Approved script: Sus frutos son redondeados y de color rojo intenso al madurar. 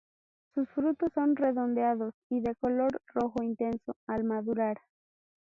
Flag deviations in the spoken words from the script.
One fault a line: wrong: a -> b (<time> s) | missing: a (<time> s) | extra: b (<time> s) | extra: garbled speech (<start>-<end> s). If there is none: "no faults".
no faults